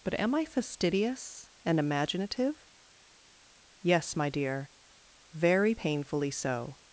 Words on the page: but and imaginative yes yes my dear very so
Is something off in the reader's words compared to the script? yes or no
yes